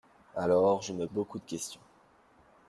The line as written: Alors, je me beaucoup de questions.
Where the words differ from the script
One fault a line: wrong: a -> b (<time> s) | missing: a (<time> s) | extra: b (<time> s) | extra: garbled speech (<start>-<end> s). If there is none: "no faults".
no faults